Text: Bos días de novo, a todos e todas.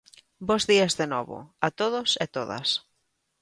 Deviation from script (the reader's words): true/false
false